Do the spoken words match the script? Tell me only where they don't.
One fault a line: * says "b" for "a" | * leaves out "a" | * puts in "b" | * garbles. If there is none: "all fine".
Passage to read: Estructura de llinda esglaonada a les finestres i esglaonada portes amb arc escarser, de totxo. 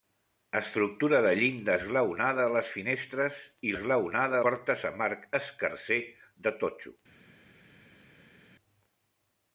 all fine